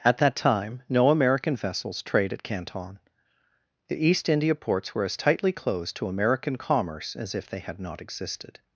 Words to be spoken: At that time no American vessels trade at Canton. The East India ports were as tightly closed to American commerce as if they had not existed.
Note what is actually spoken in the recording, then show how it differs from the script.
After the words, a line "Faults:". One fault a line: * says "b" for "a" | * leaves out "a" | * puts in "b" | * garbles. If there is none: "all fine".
At that time no American vessels trade at Canton. The East India ports were as tightly closed to American commerce as if they had not existed.
Faults:
all fine